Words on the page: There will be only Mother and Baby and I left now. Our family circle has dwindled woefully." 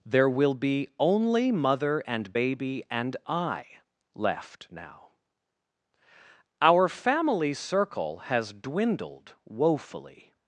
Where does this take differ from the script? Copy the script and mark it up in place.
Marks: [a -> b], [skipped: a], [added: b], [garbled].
There will be only Mother and Baby and I left now. Our family circle has dwindled woefully."